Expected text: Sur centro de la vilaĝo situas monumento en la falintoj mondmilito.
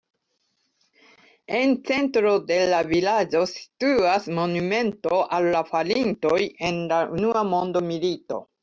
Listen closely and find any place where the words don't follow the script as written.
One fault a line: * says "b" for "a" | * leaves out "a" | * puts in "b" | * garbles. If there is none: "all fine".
* says "En" for "Sur"
* puts in "al la falintoj"
* says "unua" for "falintoj"